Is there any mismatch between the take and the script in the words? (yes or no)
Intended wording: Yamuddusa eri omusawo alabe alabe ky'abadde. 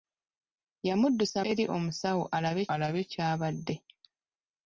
no